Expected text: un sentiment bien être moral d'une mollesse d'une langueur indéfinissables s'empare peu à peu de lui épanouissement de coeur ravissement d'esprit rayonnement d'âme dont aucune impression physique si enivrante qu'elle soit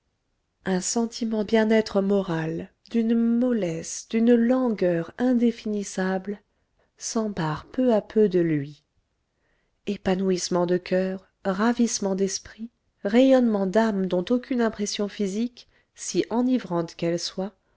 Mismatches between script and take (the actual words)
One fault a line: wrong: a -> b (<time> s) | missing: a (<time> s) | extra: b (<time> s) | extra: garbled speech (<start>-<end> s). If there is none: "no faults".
no faults